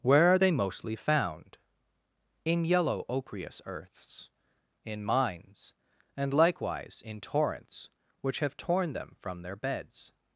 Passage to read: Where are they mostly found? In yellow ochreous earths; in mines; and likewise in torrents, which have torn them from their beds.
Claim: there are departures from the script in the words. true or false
false